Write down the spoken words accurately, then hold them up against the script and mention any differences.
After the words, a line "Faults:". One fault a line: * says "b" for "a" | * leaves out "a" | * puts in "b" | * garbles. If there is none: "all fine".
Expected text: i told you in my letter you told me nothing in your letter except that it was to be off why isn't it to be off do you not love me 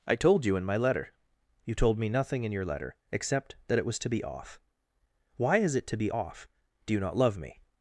i told you in my letter you told me nothing in your letter except that it was to be off why is it to be off do you not love me
Faults:
* says "is" for "isn't"